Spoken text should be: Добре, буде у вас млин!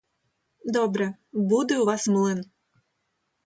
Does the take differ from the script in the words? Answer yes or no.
no